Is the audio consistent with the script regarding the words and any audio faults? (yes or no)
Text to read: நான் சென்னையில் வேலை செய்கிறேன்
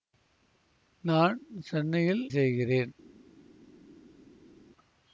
no